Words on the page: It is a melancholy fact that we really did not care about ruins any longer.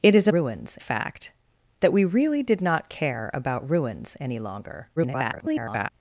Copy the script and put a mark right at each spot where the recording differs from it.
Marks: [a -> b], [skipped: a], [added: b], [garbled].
It is a [melancholy -> ruins] fact that we really did not care about ruins any longer. [garbled]